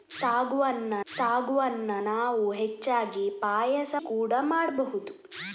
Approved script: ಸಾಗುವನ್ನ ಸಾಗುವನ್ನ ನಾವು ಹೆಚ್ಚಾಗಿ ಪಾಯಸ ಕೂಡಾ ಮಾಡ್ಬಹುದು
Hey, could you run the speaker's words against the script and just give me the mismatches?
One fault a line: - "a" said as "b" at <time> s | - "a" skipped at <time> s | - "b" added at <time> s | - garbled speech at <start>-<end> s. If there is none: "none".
none